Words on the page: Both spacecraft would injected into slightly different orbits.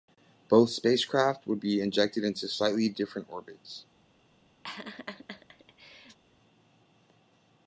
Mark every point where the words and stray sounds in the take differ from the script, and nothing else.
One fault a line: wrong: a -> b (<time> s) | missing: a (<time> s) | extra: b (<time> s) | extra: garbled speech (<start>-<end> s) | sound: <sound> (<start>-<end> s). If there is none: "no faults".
extra: be (1.6 s)
sound: laugh (4.6-6.2 s)